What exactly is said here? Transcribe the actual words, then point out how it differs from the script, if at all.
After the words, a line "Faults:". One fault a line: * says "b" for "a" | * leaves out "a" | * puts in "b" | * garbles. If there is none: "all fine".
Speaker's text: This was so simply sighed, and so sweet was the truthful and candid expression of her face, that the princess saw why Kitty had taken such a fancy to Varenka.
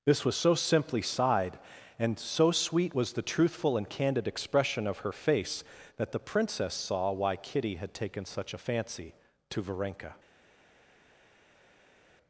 This was so simply sighed, and so sweet was the truthful and candid expression of her face, that the princess saw why Kitty had taken such a fancy to Varenka.
Faults:
all fine